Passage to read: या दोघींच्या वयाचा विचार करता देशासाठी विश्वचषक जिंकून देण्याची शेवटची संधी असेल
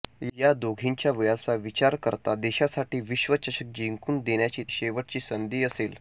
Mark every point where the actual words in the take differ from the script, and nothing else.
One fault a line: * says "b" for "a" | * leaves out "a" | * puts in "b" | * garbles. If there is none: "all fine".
all fine